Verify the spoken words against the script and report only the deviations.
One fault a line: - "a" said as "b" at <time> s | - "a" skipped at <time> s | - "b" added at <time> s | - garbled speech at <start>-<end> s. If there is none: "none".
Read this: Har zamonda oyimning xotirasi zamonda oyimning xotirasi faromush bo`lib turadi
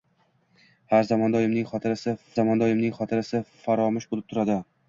none